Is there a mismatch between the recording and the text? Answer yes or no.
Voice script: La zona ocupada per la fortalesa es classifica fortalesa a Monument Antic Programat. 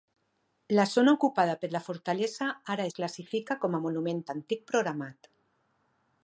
yes